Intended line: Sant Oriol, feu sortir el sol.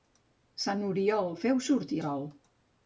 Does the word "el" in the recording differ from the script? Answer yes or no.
yes